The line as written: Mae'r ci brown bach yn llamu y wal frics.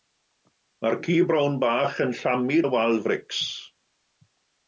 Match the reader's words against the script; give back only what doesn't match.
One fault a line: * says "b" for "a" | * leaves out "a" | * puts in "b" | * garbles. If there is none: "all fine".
all fine